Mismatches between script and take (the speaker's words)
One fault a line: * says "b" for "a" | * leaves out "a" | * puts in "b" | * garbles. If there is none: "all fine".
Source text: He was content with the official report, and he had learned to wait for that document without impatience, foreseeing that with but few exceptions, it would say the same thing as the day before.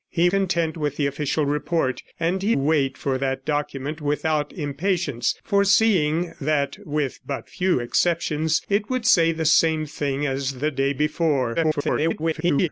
* leaves out "was"
* leaves out "had learned to"
* garbles